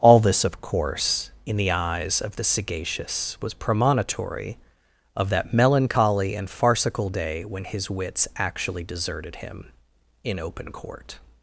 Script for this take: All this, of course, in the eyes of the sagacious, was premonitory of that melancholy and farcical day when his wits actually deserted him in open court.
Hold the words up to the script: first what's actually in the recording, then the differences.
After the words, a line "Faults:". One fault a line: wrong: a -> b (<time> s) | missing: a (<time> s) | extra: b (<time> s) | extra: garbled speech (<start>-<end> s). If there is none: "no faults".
All this, of course, in the eyes of the sagacious, was premonitory of that melancholy and farcical day when his wits actually deserted him in open court.
Faults:
no faults